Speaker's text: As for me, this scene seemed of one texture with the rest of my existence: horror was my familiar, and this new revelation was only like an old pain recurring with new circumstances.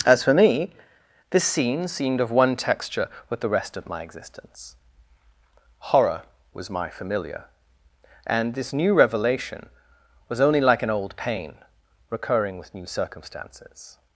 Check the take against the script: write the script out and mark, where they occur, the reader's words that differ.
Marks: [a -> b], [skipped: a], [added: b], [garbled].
As for me, this scene seemed of one texture with the rest of my existence: horror was my familiar, and this new revelation was only like an old pain recurring with new circumstances.